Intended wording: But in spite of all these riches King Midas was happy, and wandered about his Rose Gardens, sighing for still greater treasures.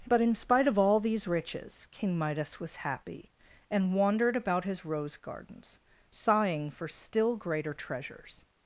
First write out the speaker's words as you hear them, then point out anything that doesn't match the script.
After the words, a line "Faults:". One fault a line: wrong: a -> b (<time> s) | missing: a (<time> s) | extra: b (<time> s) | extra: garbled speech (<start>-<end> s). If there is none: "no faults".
But in spite of all these riches King Midas was happy, and wandered about his Rose Gardens, sighing for still greater treasures.
Faults:
no faults